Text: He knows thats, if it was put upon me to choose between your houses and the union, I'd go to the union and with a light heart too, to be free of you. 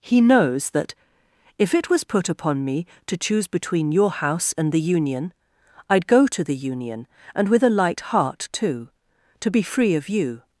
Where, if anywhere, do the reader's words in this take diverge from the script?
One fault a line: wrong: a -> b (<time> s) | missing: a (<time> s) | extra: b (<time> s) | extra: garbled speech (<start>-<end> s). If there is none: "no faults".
wrong: thats -> that (0.7 s)
wrong: houses -> house (4.1 s)